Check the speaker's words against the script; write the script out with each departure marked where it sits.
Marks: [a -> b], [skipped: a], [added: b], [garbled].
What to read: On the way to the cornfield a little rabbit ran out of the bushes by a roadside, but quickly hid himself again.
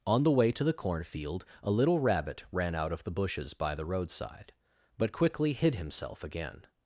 On the way to the cornfield a little rabbit ran out of the bushes by [a -> the] roadside, but quickly hid himself again.